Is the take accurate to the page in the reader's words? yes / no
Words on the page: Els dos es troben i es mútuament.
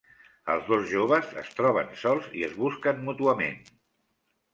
no